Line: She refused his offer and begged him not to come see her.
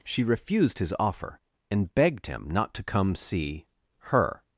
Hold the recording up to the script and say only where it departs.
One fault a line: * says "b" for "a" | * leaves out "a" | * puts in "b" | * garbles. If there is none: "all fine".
all fine